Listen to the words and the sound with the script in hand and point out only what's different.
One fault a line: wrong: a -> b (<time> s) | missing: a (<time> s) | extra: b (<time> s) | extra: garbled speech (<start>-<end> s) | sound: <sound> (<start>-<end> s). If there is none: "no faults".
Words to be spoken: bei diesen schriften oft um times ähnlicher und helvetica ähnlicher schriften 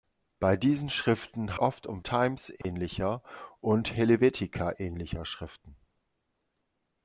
sound: dropout (2.6-2.6 s)